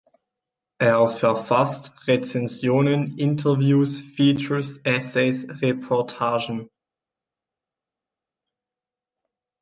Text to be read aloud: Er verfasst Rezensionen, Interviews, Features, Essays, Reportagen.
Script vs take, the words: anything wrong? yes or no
no